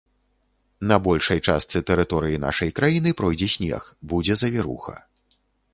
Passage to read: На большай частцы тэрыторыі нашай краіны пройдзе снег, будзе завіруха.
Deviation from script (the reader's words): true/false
false